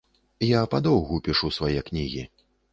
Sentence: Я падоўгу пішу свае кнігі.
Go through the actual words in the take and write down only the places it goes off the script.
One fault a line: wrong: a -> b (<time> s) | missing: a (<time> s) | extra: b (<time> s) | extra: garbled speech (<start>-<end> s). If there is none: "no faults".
no faults